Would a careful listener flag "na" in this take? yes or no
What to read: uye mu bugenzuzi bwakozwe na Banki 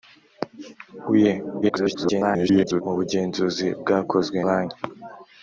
yes